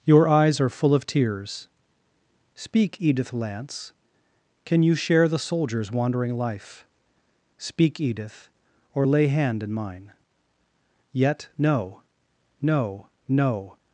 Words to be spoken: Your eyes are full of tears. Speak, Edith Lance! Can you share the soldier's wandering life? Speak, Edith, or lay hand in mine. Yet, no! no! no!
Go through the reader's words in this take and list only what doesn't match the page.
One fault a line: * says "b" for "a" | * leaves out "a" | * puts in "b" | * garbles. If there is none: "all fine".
all fine